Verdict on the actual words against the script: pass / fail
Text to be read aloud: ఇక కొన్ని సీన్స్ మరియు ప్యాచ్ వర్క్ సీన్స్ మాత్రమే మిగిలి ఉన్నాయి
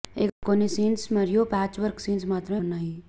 fail